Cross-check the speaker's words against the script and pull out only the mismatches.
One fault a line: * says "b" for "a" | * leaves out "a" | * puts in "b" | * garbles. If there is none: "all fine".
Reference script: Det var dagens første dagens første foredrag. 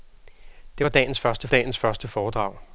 all fine